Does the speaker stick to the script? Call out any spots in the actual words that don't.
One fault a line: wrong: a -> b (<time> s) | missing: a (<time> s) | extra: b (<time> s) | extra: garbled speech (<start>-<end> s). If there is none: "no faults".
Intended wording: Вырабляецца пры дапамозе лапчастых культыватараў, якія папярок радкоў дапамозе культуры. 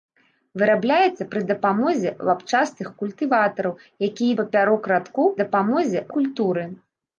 no faults